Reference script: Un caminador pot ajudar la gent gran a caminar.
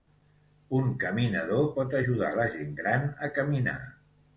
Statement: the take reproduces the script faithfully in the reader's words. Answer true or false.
true